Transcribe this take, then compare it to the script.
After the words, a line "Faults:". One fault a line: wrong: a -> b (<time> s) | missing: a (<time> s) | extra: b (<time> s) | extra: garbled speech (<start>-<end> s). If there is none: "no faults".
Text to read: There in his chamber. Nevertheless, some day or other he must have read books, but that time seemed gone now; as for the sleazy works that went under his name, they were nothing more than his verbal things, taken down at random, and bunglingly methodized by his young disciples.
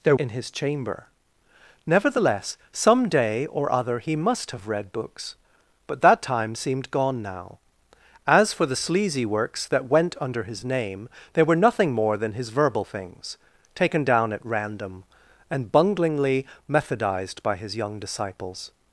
There in his chamber. Nevertheless, some day or other he must have read books, but that time seemed gone now; as for the sleazy works that went under his name, they were nothing more than his verbal things, taken down at random, and bunglingly methodized by his young disciples.
Faults:
no faults